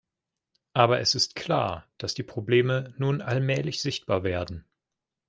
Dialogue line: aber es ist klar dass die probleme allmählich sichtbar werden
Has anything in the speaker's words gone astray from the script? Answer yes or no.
yes